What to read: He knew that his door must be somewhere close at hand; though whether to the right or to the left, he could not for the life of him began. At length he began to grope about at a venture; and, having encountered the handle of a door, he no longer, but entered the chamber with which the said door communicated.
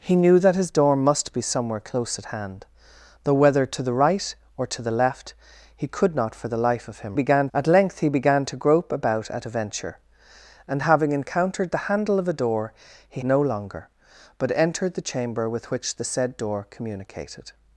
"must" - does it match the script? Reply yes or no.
yes